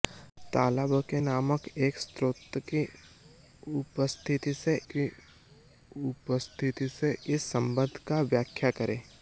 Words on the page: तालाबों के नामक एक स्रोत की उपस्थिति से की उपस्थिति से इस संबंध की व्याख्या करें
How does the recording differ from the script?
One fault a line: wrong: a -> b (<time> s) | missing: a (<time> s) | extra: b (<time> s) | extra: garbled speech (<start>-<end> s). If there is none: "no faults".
no faults